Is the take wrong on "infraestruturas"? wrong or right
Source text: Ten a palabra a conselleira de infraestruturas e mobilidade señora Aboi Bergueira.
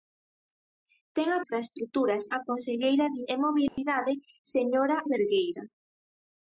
wrong